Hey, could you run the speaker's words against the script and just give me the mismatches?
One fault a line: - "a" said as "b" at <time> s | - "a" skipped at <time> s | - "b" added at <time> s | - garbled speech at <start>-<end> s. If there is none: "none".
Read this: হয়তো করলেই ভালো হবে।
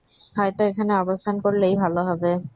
- "এখানে অবস্থান" added at 0.6 s